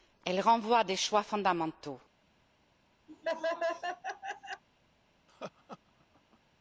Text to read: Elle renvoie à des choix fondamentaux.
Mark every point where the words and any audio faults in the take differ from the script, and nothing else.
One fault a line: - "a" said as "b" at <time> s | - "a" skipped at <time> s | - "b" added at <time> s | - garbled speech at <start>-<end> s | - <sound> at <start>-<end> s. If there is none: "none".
- laugh at 3.1-4.6 s
- laugh at 5.3-6.4 s